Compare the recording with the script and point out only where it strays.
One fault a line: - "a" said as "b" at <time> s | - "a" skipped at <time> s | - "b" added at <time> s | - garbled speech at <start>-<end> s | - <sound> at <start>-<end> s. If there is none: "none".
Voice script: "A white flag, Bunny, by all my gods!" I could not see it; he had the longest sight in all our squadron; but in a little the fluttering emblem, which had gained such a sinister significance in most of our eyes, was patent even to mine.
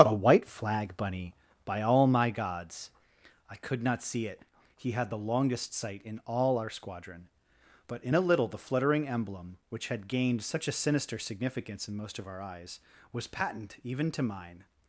none